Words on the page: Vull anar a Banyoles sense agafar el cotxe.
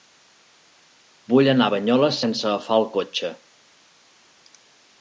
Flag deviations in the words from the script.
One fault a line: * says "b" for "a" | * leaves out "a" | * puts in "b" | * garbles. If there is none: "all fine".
all fine